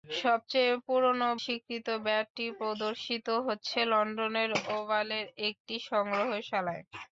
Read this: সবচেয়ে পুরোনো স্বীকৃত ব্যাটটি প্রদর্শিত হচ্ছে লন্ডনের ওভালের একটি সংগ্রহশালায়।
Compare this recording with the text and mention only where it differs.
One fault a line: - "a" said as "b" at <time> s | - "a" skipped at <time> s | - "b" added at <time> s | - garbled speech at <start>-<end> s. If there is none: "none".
none